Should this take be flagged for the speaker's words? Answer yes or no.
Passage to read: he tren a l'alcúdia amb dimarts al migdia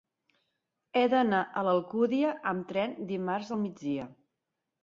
yes